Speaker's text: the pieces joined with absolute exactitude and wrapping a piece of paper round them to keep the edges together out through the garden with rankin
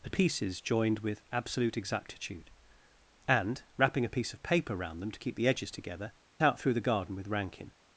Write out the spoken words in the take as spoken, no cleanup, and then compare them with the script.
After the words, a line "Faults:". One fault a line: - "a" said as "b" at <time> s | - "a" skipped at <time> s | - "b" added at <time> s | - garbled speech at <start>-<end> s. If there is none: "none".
the pieces joined with absolute exactitude and wrapping a piece of paper round them to keep the edges together out through the garden with rankin
Faults:
none